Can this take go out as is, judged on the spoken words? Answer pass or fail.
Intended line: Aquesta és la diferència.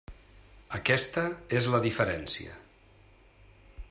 pass